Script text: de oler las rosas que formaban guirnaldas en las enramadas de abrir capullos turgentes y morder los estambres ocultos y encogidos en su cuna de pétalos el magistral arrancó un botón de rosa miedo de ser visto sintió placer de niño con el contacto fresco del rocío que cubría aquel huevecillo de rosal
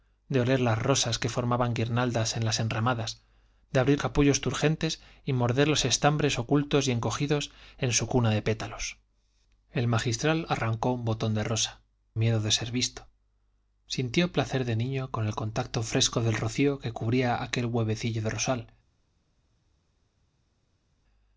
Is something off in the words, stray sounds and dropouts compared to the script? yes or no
no